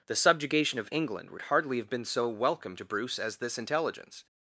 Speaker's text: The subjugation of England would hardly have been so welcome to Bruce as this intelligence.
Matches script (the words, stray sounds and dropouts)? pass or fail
pass